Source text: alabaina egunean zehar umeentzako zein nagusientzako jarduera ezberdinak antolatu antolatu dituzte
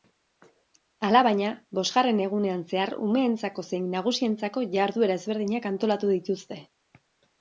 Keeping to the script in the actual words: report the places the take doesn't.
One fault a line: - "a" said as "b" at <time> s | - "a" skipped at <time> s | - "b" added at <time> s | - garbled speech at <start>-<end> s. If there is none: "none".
- "bosgarren" added at 1.8 s
- "antolatu" skipped at 6.1 s